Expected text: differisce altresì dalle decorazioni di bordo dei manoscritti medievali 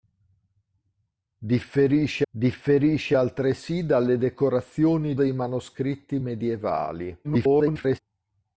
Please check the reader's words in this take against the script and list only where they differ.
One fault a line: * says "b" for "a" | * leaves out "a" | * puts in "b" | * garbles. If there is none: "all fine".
* puts in "differisce"
* leaves out "di bordo"
* garbles